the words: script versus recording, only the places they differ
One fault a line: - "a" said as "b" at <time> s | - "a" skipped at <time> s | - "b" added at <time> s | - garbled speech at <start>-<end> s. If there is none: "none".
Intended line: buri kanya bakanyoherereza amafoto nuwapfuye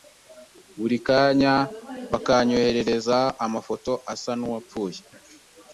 - "asa" added at 4.1 s